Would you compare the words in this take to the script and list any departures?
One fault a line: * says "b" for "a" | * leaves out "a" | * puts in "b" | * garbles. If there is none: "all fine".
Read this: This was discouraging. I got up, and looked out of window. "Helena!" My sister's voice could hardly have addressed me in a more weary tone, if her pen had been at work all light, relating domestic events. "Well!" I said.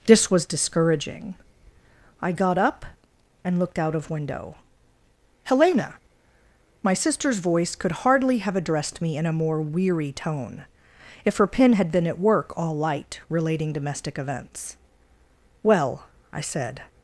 all fine